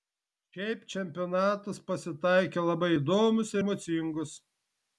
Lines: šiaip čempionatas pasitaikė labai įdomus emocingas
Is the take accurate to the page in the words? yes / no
yes